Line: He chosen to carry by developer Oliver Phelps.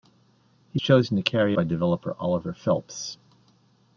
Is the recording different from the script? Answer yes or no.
no